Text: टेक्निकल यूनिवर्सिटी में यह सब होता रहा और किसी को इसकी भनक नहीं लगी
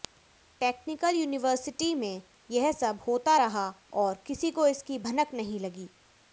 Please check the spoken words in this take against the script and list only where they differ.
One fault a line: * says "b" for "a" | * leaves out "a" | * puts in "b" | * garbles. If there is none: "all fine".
all fine